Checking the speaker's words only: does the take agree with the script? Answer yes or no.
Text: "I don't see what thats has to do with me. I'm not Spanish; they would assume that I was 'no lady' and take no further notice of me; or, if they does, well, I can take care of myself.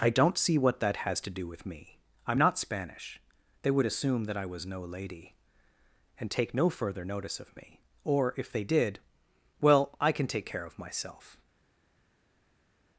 no